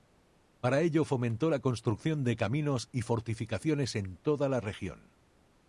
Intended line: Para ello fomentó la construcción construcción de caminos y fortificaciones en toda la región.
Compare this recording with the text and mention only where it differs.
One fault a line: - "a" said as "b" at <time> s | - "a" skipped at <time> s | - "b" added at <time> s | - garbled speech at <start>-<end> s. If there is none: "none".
- "construcción" skipped at 2.2 s